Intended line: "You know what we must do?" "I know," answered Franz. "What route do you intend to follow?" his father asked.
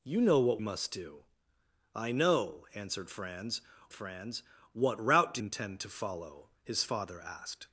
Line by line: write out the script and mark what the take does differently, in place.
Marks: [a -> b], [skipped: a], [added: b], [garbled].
"You know what [skipped: we] must do?" "I know," answered Franz. [added: Franz] "What route do [skipped: you] intend to follow?" his father asked.